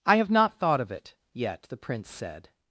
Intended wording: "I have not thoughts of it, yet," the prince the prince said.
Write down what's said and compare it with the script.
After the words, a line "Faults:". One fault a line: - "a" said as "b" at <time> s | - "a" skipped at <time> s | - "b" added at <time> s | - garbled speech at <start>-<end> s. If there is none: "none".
"I have not thought of it, yet," the prince said.
Faults:
- "thoughts" said as "thought" at 0.6 s
- "the prince" skipped at 2.1 s